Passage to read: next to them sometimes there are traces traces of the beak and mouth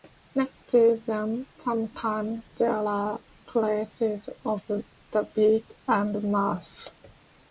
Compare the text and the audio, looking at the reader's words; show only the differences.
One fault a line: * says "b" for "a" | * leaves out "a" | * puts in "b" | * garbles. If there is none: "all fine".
* leaves out "traces"